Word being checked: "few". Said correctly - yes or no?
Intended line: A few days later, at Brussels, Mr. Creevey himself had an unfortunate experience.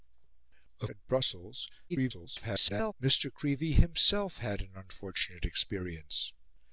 no